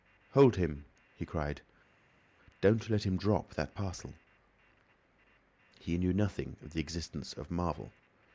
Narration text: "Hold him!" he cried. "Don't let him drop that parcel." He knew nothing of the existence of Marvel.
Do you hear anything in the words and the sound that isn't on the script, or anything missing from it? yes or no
no